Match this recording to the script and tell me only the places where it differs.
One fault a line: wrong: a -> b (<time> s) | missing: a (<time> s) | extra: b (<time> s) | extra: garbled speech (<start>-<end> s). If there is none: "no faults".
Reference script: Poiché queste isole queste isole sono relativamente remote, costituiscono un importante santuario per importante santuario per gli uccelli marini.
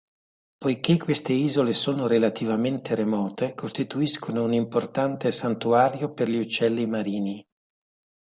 missing: queste isole (1.8 s)
missing: importante santuario per (6.3 s)